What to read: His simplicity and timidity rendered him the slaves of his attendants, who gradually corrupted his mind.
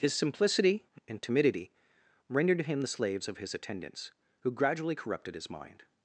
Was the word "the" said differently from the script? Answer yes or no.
no